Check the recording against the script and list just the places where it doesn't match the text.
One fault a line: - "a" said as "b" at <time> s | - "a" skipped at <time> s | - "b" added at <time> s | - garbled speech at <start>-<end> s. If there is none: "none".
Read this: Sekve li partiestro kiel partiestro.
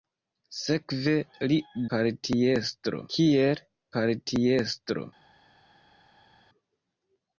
none